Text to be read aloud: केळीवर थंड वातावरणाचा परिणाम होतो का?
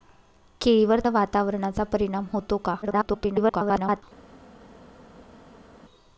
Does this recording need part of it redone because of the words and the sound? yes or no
yes